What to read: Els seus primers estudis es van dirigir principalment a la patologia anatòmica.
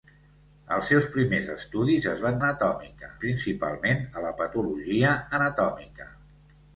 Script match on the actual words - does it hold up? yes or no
no